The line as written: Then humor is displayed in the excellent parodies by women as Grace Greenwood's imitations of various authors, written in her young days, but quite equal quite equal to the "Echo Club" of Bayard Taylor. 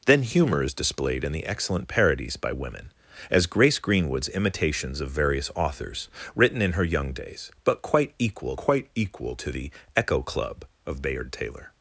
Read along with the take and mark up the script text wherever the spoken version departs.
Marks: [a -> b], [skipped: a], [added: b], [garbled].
Then humor is displayed in the excellent parodies by women as Grace Greenwood's imitations of various authors, written in her young days, but quite equal quite equal to the "Echo Club" of Bayard Taylor.